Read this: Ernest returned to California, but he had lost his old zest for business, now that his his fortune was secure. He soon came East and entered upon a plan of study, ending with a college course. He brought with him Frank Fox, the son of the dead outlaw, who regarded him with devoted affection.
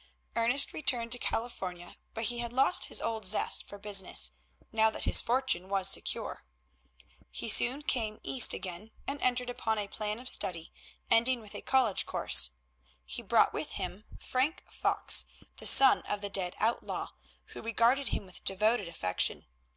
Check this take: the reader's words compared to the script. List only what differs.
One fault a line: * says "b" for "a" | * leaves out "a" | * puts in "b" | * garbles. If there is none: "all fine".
* leaves out "his"
* puts in "again"